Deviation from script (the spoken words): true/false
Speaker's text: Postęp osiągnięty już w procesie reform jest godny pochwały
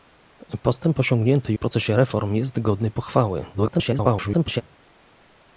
true